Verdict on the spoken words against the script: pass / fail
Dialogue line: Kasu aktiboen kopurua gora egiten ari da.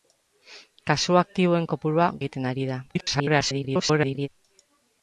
fail